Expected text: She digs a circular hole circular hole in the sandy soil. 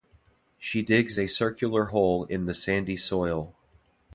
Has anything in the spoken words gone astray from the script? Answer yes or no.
yes